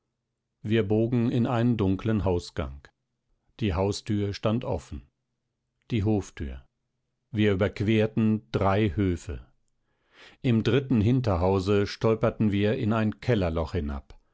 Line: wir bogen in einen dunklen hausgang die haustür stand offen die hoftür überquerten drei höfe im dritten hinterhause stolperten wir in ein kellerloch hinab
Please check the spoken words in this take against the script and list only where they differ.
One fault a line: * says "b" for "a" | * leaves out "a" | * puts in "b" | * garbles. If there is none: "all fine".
* puts in "wir"